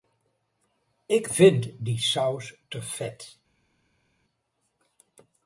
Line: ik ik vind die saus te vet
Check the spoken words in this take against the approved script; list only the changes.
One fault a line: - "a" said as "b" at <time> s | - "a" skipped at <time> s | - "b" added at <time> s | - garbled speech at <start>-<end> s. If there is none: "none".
- "ik" skipped at 1.3 s